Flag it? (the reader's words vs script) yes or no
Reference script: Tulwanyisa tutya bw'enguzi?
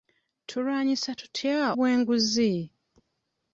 no